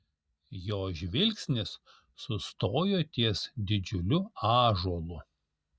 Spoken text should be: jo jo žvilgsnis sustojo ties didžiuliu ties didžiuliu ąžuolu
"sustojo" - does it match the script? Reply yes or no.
yes